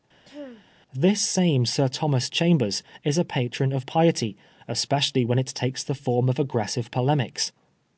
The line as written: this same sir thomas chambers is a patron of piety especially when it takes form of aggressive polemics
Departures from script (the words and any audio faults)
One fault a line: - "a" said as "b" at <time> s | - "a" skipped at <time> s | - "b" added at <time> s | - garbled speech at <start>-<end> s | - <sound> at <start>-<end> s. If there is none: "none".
- throat clearing at 0.2-0.7 s
- "the" added at 5.8 s